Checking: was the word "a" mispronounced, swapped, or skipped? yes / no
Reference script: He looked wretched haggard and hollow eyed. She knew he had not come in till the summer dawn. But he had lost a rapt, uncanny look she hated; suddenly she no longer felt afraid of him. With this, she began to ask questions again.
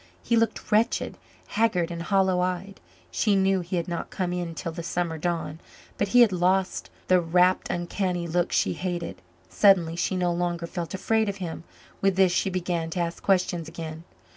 yes